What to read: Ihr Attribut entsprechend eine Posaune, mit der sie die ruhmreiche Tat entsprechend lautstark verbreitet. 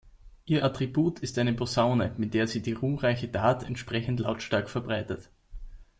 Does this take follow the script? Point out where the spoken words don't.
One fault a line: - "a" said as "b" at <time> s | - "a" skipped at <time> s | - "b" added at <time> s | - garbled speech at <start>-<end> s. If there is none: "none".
- "entsprechend" said as "ist" at 1.2 s